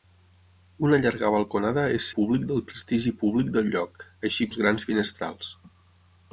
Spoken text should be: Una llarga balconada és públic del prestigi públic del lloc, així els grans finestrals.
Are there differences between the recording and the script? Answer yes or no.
no